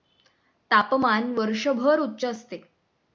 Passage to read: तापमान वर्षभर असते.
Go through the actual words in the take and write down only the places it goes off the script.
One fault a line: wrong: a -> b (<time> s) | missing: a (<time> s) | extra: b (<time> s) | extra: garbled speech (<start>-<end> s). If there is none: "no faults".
extra: उच्च (2.0 s)